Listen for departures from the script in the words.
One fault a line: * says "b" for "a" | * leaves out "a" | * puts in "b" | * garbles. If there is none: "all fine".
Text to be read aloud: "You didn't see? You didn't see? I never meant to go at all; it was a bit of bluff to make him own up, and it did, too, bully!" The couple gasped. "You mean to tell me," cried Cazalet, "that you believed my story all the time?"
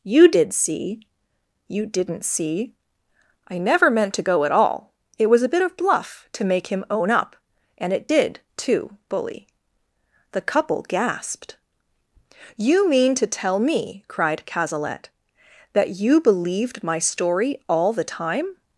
* says "did" for "didn't"